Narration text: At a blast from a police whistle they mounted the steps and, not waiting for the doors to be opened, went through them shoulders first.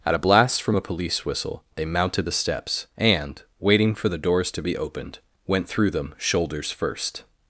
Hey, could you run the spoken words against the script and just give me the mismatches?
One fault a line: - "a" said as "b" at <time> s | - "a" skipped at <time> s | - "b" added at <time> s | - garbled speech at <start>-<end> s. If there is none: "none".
- "not" skipped at 3.4 s